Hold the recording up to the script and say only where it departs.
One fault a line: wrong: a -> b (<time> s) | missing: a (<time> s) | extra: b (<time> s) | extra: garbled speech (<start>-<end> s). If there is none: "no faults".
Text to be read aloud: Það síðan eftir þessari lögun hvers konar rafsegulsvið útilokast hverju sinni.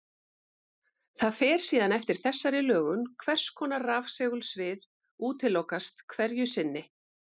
extra: fer (1.4 s)